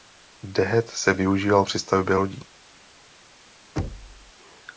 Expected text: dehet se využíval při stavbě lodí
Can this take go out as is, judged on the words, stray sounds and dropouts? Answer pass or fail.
fail